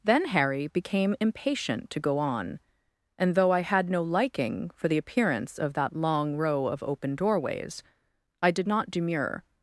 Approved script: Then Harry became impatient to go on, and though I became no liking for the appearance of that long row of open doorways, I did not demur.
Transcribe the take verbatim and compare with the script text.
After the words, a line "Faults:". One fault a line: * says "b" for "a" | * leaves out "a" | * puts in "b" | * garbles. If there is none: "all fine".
Then Harry became impatient to go on, and though I had no liking for the appearance of that long row of open doorways, I did not demur.
Faults:
* says "had" for "became"